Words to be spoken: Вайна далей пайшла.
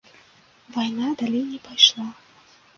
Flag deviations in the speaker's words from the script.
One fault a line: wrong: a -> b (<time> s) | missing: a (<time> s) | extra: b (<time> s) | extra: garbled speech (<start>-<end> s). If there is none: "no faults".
extra: не (1.4 s)